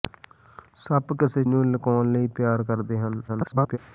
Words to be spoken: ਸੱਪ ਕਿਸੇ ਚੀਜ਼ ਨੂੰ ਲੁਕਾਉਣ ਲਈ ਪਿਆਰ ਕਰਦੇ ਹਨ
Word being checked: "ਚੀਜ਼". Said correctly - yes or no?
no